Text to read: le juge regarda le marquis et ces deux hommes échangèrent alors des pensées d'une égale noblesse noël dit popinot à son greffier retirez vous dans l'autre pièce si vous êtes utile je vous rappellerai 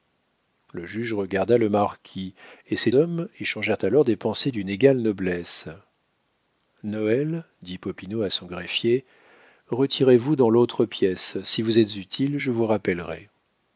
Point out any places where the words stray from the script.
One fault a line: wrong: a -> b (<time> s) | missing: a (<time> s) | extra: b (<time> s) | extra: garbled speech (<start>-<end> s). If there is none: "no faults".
missing: deux (2.9 s)